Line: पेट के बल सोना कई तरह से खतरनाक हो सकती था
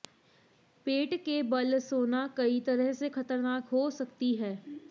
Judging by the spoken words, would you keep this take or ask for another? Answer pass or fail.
fail